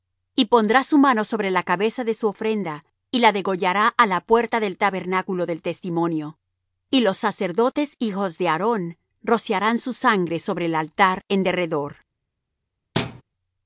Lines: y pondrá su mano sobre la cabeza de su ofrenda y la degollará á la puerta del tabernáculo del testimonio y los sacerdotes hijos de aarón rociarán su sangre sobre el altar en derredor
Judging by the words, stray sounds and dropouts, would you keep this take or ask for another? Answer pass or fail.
fail